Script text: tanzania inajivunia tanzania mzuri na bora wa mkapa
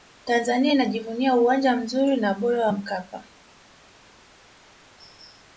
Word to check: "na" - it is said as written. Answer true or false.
true